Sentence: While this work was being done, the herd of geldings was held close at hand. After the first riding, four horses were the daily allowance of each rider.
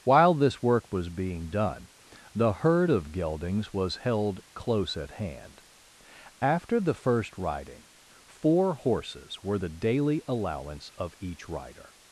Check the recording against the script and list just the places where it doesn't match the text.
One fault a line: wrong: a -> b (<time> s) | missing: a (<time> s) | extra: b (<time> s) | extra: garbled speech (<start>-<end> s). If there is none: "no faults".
no faults